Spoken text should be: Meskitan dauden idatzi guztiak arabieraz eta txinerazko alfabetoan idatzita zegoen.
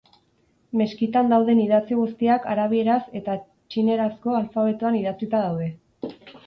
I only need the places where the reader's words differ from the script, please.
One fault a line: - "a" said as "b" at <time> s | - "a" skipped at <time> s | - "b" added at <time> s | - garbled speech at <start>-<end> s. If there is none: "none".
- "zegoen" said as "daude" at 5.5 s